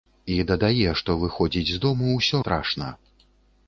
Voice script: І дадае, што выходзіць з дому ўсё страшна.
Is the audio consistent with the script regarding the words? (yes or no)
yes